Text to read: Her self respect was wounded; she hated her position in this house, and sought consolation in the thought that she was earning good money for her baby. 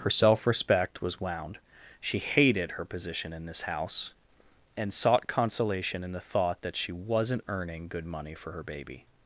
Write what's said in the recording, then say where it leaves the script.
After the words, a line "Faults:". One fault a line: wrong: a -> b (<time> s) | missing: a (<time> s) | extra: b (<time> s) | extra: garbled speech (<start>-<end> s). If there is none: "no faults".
Her self respect was wound; she hated her position in this house, and sought consolation in the thought that she wasn't earning good money for her baby.
Faults:
wrong: wounded -> wound (1.2 s)
wrong: was -> wasn't (6.9 s)